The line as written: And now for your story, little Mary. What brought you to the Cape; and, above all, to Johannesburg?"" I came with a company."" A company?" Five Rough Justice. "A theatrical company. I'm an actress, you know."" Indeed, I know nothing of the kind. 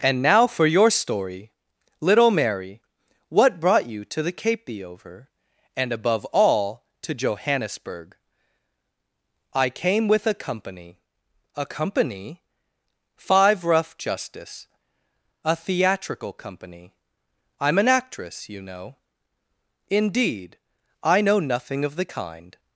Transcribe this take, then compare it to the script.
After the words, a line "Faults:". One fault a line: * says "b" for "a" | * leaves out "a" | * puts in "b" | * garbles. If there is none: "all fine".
And now for your story, little Mary. What brought you to the Cape; the over and, above all, to Johannesburg?"" I came with a company."" A company?" Five Rough Justice. "A theatrical company. I'm an actress, you know."" Indeed, I know nothing of the kind.
Faults:
* puts in "the over"